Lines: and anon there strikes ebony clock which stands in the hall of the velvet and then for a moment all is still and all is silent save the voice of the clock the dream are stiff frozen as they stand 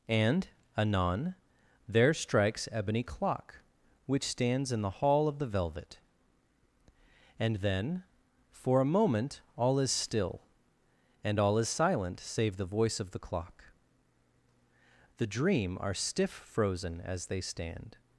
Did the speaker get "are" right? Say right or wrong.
right